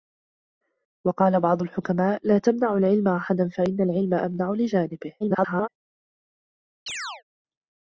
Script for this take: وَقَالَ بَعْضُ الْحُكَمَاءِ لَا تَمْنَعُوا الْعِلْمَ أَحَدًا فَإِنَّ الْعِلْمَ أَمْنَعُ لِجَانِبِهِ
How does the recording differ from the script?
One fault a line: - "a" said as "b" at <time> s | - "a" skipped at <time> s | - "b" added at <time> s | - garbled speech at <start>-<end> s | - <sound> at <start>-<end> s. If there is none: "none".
- garbled speech at 5.2-5.7 s
- chirp at 6.9-7.2 s